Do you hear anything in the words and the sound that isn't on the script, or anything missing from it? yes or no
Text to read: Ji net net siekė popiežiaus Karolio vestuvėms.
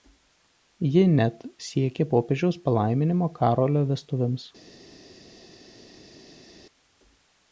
yes